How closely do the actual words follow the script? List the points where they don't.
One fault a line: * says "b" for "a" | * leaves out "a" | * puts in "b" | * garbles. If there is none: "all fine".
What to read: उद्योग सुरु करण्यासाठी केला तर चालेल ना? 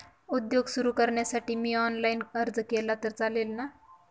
* puts in "मी ऑनलाईन अर्ज"